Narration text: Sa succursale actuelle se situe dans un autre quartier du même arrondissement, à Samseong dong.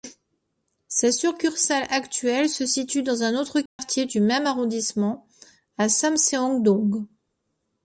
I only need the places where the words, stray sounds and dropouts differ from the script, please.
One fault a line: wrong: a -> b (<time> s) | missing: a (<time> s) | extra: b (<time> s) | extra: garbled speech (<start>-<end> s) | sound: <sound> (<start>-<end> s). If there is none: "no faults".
sound: dropout (3.7-3.8 s)